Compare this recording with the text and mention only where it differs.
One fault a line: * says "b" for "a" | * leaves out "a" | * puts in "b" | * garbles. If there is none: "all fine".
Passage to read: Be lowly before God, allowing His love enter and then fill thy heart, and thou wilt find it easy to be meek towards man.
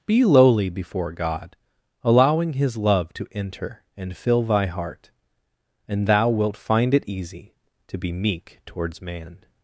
* puts in "to"
* leaves out "then"